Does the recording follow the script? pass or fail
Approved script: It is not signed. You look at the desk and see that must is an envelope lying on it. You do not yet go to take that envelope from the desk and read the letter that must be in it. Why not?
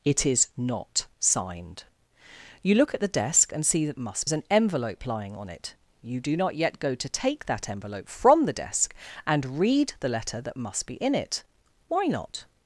pass